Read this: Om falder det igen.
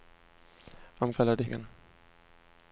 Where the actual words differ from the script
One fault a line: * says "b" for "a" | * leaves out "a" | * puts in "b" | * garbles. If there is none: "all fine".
all fine